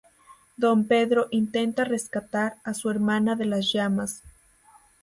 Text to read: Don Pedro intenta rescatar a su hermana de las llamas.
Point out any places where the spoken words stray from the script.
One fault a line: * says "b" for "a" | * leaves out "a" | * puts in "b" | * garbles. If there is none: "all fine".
all fine